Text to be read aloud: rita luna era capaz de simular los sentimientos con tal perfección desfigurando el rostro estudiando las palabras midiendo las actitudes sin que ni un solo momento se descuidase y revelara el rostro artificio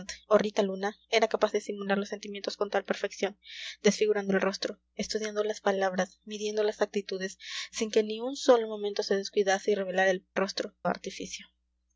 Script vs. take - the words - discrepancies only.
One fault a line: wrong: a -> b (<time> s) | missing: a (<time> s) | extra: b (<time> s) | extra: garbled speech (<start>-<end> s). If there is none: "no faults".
no faults